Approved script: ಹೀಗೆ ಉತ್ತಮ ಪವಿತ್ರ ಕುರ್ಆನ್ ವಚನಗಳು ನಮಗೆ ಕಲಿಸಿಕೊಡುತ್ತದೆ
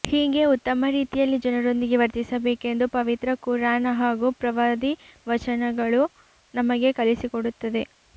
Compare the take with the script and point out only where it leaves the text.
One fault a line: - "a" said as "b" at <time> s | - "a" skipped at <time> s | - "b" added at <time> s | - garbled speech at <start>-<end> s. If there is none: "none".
- "ರೀತಿಯಲ್ಲಿ ಜನರೊಂದಿಗೆ ವರ್ತಿಸಬೇಕೆಂದು" added at 0.9 s
- "ಹಾಗೂ ಪ್ರವಾದಿ" added at 4.0 s